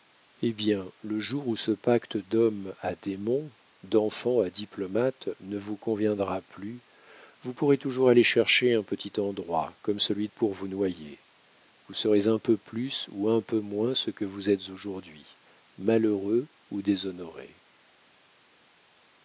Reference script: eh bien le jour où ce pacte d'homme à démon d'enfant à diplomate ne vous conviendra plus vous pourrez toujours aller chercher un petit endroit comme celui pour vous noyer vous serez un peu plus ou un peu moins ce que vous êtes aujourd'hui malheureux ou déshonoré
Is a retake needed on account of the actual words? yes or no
no